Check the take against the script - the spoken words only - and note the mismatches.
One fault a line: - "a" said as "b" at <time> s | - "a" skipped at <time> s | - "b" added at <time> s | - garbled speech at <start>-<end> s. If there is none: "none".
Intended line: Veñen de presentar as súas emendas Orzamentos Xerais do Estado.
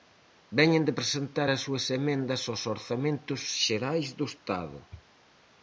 - "aos" added at 2.4 s